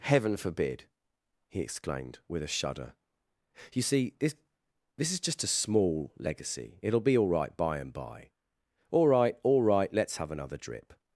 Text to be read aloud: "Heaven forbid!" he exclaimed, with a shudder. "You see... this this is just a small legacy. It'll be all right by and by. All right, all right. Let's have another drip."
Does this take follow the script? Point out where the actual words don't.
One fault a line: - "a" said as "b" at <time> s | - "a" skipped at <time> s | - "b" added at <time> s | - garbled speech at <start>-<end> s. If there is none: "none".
none